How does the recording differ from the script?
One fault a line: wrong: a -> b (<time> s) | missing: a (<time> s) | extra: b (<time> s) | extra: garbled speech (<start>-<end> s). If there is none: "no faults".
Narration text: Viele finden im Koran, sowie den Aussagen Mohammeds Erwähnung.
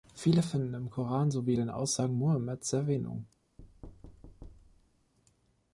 no faults